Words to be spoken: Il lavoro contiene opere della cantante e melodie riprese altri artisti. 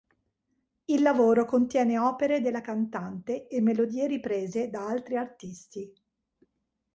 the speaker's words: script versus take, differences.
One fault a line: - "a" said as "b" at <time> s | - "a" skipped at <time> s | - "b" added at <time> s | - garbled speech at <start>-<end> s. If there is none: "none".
- "da" added at 4.7 s